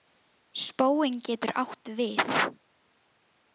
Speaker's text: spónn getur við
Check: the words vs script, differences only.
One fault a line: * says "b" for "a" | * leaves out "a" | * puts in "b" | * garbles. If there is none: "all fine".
* puts in "átt"